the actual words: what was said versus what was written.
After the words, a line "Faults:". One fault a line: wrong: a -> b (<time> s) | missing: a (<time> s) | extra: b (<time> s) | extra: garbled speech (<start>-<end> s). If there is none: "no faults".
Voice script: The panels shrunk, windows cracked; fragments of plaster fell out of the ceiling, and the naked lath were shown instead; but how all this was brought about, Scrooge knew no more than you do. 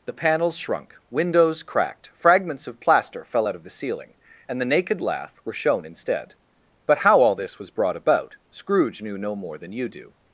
The panels shrunk, windows cracked; fragments of plaster fell out of the ceiling, and the naked lath were shown instead; but how all this was brought about, Scrooge knew no more than you do.
Faults:
no faults